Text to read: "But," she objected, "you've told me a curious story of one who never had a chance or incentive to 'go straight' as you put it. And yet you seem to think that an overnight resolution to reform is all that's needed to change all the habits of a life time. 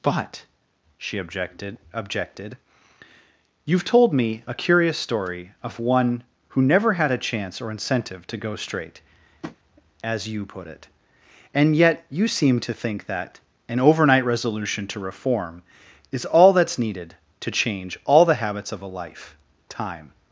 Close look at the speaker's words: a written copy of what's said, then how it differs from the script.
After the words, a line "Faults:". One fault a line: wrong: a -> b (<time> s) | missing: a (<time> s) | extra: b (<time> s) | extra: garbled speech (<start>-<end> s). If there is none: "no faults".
"But," she objected objected, "you've told me a curious story of one who never had a chance or incentive to 'go straight' as you put it. And yet you seem to think that an overnight resolution to reform is all that's needed to change all the habits of a life time.
Faults:
extra: objected (1.9 s)